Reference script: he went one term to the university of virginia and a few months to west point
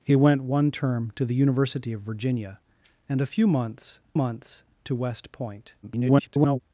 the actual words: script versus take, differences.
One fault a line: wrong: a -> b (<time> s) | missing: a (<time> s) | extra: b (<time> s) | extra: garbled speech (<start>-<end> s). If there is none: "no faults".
extra: months (4.1 s)
extra: garbled speech (5.8-6.6 s)